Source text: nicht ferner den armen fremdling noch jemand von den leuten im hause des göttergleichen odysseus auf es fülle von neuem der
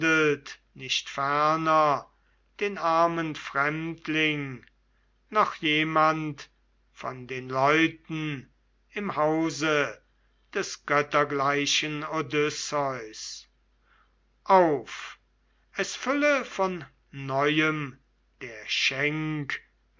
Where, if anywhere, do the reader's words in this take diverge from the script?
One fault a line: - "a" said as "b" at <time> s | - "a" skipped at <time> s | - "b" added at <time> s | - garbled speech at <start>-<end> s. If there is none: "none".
none